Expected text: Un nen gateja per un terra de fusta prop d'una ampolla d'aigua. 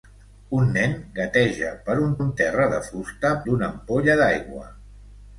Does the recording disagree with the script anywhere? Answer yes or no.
yes